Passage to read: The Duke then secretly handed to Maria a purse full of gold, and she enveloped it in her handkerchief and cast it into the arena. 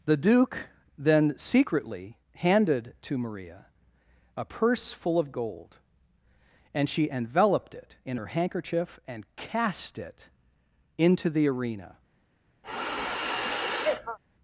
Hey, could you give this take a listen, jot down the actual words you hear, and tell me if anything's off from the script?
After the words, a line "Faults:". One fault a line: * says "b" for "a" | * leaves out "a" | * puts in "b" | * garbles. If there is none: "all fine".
The Duke then secretly handed to Maria a purse full of gold, and she enveloped it in her handkerchief and cast it into the arena.
Faults:
all fine